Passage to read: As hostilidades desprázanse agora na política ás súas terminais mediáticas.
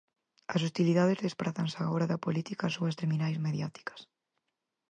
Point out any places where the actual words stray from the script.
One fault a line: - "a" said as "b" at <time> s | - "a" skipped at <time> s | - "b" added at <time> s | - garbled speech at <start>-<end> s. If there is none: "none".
- "na" said as "da" at 2.1 s